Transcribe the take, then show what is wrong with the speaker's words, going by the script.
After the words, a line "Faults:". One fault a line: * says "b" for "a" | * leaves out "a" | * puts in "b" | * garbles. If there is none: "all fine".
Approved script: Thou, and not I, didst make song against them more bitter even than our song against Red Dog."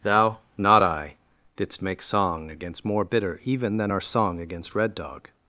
Thou, not I, didst make song against more bitter even than our song against Red Dog."
Faults:
* leaves out "and"
* leaves out "them"